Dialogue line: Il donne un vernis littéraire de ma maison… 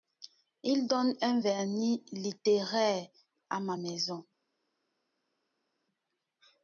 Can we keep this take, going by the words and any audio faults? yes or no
no